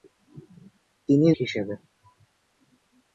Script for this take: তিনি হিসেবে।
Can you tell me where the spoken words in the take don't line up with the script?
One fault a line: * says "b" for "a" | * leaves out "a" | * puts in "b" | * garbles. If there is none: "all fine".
all fine